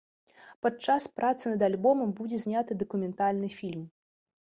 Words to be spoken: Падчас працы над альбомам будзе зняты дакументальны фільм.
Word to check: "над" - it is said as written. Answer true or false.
true